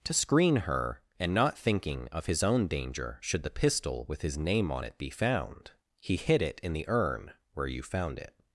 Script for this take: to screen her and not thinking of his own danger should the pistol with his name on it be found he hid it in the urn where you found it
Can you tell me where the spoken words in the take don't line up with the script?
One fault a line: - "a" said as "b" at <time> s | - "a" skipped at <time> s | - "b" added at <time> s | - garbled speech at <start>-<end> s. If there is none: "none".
none